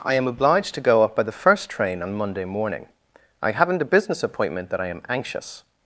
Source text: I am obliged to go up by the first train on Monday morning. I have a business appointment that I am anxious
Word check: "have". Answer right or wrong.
wrong